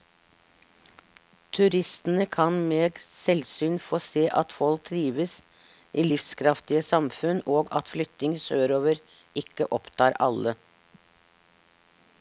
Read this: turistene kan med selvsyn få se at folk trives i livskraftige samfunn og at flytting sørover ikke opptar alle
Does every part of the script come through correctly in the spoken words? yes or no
yes